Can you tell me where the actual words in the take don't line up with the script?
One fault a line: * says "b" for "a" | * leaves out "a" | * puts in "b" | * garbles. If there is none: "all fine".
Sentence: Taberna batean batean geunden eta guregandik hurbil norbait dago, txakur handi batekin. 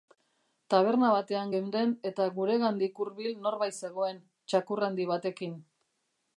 * leaves out "batean"
* says "zegoen" for "dago"